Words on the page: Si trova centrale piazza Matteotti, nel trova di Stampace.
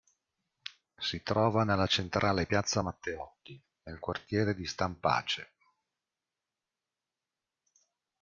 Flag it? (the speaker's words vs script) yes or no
yes